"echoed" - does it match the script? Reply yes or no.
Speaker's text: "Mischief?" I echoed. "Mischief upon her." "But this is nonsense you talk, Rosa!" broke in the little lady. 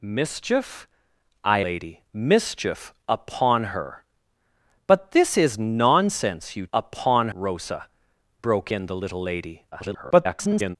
no